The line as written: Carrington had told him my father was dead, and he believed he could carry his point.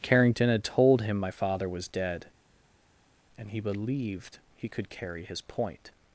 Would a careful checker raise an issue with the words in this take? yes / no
no